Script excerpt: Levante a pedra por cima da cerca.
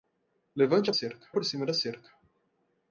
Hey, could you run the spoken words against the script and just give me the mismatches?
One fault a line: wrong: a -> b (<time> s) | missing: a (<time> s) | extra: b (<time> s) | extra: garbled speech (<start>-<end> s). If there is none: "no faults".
wrong: pedra -> cerca (0.9 s)